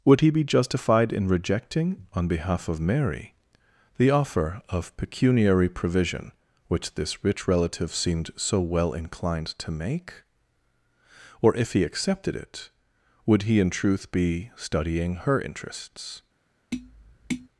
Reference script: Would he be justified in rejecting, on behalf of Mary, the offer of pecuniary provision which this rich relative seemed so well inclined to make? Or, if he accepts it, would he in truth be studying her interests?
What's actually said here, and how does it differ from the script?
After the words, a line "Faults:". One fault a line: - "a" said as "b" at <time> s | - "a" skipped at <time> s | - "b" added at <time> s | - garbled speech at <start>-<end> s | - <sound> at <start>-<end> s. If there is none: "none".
Would he be justified in rejecting, on behalf of Mary, the offer of pecuniary provision which this rich relative seemed so well inclined to make? Or, if he accepted it, would he in truth be studying her interests?
Faults:
- "accepts" said as "accepted" at 11.8 s
- tap at 16.7-17.5 s